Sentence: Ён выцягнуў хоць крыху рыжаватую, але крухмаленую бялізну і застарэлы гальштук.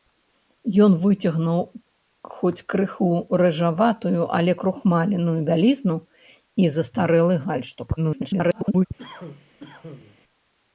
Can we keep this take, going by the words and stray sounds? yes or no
no